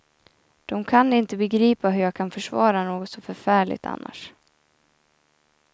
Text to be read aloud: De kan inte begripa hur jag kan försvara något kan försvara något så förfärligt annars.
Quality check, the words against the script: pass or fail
fail